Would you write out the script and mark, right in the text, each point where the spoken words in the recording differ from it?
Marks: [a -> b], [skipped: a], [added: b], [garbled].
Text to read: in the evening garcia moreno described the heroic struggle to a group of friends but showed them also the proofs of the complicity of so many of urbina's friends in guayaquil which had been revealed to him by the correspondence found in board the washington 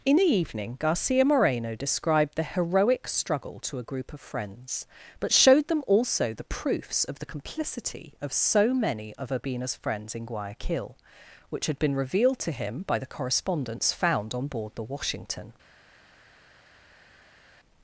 in the evening garcia moreno described the heroic struggle to a group of friends but showed them also the proofs of the complicity of so many of urbina's friends in guayaquil which had been revealed to him by the correspondence found [in -> on] board the washington